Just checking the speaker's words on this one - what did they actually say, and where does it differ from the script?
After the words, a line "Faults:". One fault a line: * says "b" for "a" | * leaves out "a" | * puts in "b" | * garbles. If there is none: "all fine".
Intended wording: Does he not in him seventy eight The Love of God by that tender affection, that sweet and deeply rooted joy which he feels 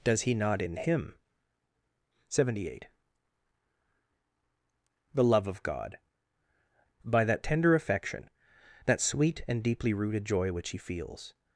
Does he not in him seventy eight The Love of God by that tender affection, that sweet and deeply rooted joy which he feels
Faults:
all fine